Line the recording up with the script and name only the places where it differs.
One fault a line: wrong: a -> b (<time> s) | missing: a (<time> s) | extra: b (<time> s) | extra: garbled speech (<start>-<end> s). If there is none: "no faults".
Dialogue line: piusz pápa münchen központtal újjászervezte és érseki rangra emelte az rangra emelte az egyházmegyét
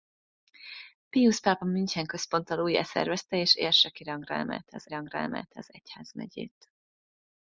no faults